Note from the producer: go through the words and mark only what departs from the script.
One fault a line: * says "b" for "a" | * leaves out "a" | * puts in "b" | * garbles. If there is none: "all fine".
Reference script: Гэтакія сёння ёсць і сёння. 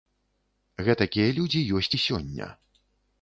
* says "людзі" for "сёння"